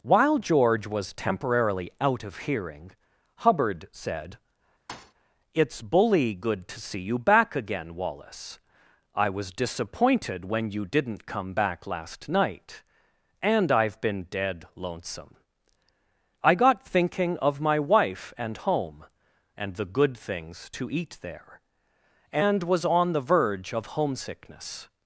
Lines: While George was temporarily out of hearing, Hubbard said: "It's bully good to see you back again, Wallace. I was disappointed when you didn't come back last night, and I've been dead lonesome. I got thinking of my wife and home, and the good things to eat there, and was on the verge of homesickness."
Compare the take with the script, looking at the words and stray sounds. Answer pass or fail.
fail